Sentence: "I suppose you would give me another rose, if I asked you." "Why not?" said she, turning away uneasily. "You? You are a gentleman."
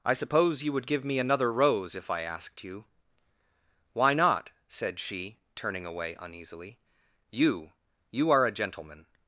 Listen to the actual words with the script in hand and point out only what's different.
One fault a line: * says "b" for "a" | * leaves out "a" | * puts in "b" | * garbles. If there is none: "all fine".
all fine